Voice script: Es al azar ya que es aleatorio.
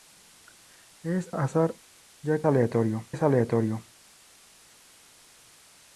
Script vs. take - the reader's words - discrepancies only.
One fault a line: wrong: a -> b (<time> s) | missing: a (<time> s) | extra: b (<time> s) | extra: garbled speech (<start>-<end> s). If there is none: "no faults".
missing: al (1.3 s)
wrong: que -> aleatorio (2.5 s)